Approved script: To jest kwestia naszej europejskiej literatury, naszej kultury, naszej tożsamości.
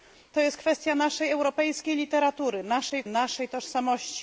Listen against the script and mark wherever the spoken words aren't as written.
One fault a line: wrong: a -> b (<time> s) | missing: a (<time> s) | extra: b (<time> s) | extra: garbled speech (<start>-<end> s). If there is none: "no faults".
missing: kultury (3.0 s)